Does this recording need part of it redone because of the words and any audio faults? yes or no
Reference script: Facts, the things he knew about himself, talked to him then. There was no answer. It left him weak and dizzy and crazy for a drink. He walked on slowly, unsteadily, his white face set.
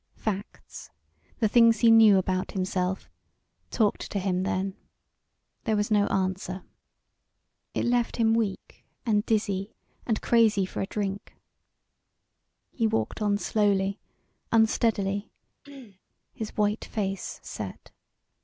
yes